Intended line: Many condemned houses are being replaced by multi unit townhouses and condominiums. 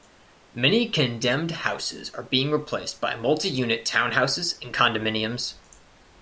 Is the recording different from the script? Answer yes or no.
no